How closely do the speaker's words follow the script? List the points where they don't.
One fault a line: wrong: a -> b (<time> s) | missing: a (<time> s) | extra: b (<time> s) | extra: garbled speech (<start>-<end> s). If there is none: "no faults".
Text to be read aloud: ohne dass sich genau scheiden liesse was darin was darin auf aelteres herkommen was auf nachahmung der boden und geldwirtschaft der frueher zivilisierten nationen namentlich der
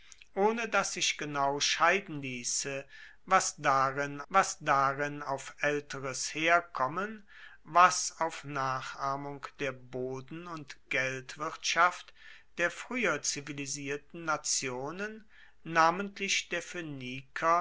no faults